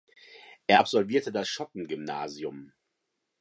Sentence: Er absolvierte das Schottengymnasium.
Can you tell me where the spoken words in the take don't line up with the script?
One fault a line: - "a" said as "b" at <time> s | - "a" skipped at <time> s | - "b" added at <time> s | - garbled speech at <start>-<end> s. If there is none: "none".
none